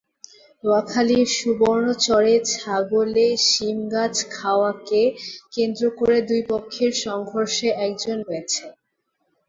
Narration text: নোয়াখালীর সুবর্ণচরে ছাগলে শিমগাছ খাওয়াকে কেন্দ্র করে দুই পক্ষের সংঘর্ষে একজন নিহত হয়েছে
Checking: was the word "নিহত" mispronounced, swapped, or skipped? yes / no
yes